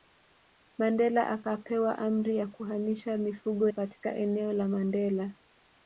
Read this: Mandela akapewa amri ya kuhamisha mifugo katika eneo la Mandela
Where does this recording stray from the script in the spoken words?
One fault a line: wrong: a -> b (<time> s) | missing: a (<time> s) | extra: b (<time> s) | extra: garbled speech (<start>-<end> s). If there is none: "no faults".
no faults